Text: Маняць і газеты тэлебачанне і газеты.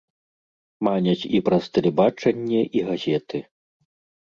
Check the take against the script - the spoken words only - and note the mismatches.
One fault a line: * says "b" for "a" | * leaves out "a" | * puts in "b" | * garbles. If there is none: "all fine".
* says "праз" for "газеты"